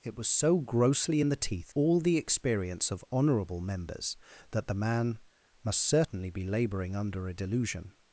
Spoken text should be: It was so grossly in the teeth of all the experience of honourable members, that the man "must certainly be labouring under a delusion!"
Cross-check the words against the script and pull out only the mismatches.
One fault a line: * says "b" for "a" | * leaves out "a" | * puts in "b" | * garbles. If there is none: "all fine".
* leaves out "of"